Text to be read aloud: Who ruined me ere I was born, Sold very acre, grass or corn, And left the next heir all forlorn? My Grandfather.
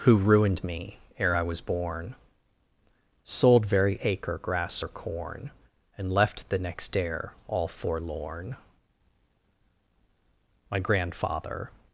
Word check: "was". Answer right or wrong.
right